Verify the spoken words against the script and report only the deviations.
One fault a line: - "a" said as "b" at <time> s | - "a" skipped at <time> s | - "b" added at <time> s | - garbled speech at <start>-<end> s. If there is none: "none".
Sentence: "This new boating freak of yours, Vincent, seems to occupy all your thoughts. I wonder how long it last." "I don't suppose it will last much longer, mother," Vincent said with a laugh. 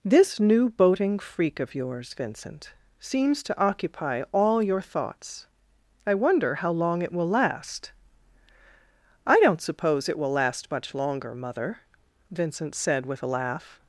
- "will" added at 7.1 s